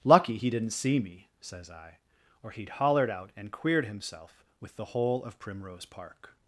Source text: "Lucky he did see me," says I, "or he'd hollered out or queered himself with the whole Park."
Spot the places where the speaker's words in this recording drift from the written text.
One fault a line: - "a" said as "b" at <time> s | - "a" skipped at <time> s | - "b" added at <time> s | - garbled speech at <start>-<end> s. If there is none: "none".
- "did" said as "didn't" at 0.5 s
- "or" said as "and" at 3.3 s
- "of Primrose" added at 5.2 s